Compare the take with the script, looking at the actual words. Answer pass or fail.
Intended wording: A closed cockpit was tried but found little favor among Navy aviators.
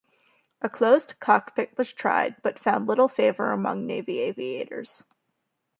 pass